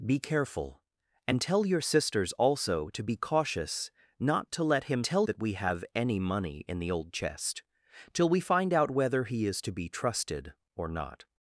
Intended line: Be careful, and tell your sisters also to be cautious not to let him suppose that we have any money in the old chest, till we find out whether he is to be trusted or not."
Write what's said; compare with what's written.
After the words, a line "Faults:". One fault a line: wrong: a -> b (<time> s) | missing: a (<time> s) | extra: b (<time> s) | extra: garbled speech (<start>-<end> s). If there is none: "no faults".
Be careful, and tell your sisters also to be cautious not to let him tell that we have any money in the old chest, till we find out whether he is to be trusted or not."
Faults:
wrong: suppose -> tell (5.0 s)